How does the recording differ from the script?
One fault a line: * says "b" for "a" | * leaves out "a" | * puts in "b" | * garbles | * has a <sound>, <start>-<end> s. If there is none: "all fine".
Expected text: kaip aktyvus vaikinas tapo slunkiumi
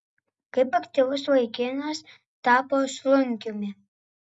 all fine